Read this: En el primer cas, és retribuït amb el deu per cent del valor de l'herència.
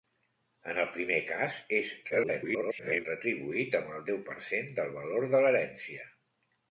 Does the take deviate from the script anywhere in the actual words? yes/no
yes